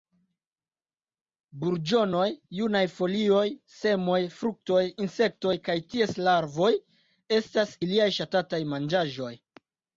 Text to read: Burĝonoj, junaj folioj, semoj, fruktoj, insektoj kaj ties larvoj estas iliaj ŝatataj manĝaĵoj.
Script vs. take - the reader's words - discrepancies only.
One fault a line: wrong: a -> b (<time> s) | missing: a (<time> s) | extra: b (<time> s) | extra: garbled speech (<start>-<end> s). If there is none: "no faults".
no faults